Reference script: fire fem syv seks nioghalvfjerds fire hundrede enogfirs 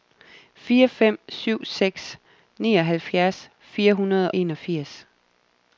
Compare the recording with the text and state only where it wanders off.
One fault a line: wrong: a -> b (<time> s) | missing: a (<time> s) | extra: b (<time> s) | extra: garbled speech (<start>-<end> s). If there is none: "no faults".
no faults